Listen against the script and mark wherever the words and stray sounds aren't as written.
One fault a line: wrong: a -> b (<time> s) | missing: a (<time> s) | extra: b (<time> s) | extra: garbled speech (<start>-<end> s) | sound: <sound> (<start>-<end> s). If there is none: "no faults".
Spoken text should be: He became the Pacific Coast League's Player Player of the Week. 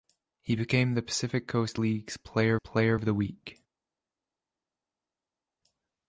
no faults